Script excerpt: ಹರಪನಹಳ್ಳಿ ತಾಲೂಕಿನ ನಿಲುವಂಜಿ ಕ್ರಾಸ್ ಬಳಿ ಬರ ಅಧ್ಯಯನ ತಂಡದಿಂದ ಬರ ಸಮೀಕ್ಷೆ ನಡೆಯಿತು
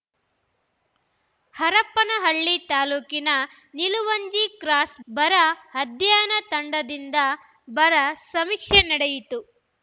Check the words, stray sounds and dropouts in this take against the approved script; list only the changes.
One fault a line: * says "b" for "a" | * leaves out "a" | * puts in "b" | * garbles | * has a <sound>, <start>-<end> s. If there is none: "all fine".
* leaves out "ಬಳಿ"